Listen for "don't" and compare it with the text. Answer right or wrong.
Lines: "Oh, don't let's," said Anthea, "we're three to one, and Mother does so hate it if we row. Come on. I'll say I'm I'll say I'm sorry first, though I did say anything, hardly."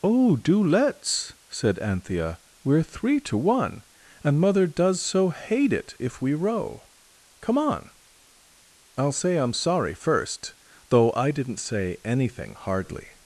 wrong